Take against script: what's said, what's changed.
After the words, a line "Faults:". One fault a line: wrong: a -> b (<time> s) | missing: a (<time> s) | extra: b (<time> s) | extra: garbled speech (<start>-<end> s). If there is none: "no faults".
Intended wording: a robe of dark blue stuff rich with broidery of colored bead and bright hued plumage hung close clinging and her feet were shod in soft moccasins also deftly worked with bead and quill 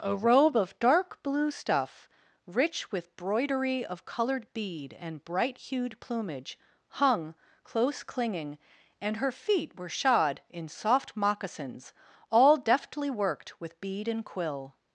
a robe of dark blue stuff rich with broidery of colored bead and bright hued plumage hung close clinging and her feet were shod in soft moccasins all deftly worked with bead and quill
Faults:
wrong: also -> all (12.3 s)